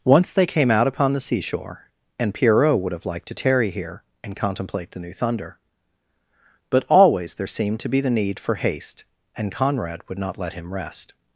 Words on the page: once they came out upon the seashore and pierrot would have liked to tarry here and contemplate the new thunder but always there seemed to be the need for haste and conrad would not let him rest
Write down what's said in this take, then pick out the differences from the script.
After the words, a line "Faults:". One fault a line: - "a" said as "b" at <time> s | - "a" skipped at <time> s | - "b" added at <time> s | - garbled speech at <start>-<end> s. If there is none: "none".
once they came out upon the seashore and pierrot would have liked to tarry here and contemplate the new thunder but always there seemed to be the need for haste and conrad would not let him rest
Faults:
none